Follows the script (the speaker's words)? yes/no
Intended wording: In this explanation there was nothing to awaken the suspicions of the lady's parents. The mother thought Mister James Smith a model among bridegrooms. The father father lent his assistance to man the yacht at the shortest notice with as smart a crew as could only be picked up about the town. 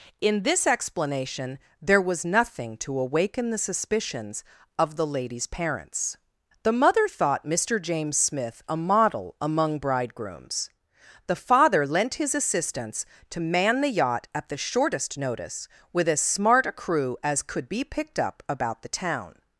no